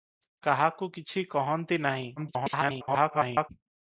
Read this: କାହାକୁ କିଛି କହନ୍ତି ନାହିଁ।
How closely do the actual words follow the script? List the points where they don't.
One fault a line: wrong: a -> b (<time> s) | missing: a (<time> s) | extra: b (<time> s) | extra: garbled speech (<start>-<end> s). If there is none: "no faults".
extra: garbled speech (2.2-3.5 s)